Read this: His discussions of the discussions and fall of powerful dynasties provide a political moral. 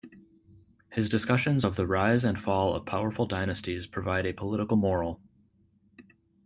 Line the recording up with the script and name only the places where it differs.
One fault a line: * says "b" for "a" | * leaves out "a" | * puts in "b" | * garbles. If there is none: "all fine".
* says "rise" for "discussions"